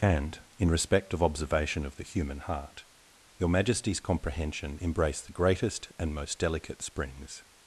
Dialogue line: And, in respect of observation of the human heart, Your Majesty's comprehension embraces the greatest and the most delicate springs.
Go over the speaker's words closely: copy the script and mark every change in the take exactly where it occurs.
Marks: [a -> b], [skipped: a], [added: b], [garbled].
And, in respect of observation of the human heart, Your Majesty's comprehension [embraces -> embrace] the greatest and [skipped: the] most delicate springs.